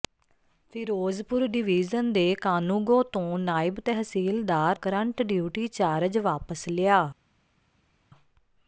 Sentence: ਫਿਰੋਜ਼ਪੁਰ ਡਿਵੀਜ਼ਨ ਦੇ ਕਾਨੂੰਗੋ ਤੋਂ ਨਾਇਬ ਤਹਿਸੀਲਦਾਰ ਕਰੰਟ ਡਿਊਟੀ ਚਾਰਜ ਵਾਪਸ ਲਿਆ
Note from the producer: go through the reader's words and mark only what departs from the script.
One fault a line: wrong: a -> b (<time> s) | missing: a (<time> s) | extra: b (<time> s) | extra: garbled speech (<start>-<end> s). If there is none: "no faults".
no faults